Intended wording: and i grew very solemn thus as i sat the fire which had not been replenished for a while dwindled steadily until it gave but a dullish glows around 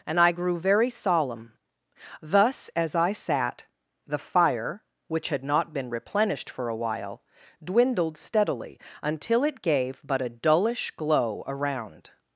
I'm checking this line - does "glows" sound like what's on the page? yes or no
no